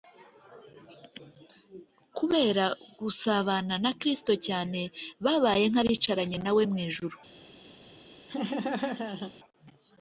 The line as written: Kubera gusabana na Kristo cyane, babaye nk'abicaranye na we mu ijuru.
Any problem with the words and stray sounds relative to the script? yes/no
yes